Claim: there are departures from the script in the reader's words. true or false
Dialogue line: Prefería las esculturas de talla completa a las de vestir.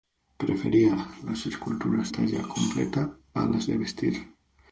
true